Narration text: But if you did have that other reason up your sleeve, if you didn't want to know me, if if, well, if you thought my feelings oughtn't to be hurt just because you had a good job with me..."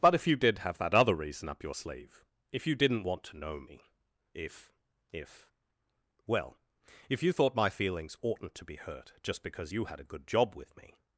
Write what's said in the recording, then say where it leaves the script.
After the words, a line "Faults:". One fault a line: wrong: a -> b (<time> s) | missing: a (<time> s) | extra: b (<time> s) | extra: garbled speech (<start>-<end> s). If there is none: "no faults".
But if you did have that other reason up your sleeve, if you didn't want to know me, if if, well, if you thought my feelings oughtn't to be hurt just because you had a good job with me..."
Faults:
no faults